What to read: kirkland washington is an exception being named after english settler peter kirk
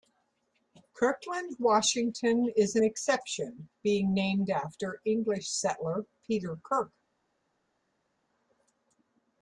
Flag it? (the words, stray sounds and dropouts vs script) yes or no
no